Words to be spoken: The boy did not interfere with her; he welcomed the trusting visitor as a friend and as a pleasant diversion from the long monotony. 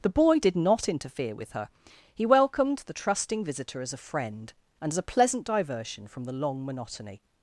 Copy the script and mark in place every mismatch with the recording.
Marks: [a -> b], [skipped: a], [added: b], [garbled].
The boy did not interfere with her; he welcomed the trusting visitor as a friend and as a pleasant diversion from the long monotony.